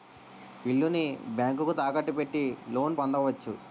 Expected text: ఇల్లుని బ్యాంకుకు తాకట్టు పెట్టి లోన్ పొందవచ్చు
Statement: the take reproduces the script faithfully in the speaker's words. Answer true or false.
true